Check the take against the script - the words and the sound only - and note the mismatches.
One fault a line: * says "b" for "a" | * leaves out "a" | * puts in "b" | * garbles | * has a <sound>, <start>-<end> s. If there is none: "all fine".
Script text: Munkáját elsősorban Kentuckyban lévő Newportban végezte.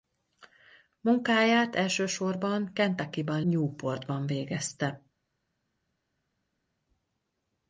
* leaves out "lévő"